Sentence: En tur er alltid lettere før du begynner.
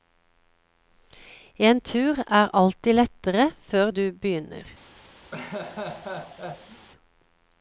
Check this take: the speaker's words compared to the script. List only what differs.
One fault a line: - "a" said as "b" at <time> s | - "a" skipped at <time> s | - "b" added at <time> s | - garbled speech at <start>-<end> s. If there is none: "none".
none